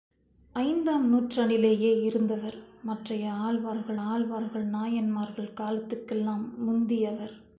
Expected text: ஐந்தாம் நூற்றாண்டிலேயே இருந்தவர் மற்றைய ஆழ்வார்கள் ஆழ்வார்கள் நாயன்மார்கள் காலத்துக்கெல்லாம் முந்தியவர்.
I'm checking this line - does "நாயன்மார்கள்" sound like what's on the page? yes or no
yes